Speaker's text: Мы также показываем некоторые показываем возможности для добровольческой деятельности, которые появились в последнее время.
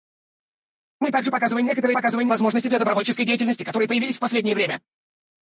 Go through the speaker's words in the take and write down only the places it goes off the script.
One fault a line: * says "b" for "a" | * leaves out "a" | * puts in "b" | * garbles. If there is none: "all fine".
all fine